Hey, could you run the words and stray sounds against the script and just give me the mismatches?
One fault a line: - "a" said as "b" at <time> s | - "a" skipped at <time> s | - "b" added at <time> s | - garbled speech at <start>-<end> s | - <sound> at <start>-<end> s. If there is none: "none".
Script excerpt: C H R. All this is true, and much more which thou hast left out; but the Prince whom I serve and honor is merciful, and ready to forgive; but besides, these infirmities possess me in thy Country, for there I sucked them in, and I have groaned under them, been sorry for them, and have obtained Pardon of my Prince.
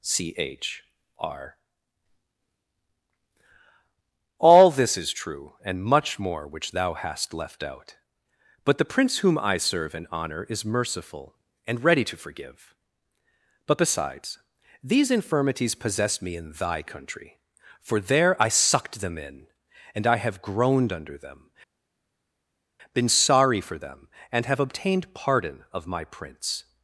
none